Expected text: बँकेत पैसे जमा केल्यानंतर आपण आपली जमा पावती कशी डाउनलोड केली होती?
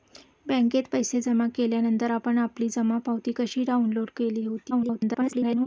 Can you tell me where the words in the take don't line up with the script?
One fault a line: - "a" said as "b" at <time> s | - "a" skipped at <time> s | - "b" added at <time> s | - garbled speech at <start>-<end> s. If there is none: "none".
- garbled speech at 4.7-5.7 s